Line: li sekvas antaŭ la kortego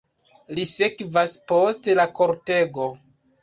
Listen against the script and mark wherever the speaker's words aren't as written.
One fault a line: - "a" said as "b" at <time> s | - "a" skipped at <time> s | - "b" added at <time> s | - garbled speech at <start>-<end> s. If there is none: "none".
- "antaŭ" said as "post" at 1.5 s